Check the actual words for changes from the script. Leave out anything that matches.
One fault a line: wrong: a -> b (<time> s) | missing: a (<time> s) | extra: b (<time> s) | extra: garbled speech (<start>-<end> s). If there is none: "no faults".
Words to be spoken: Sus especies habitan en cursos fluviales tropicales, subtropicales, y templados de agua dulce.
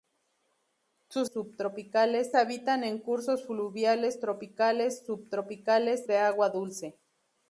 wrong: especies -> subtropicales (1.3 s)
missing: y templados (6.1 s)